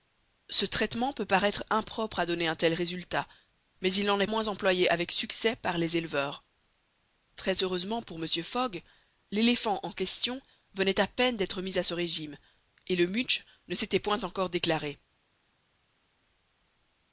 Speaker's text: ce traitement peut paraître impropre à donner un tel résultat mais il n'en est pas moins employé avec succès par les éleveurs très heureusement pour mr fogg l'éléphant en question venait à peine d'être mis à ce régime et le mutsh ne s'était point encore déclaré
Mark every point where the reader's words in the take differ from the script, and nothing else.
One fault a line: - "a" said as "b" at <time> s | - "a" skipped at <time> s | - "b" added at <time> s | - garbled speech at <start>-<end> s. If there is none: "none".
- "pas" skipped at 4.2 s